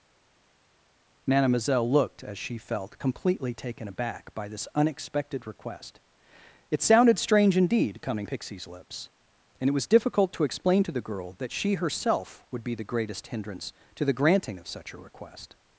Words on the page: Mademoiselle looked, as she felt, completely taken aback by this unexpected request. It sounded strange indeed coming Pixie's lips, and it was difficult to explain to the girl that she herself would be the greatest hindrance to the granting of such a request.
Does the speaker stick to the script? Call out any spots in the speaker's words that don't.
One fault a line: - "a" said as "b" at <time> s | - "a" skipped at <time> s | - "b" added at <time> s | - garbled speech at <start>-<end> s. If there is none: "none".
none